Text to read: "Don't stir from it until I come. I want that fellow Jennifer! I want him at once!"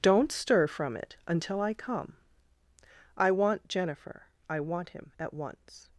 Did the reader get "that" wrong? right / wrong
wrong